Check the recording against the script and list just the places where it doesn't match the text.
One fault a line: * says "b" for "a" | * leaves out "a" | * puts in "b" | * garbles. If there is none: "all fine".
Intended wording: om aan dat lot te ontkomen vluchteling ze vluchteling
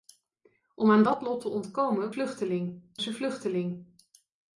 all fine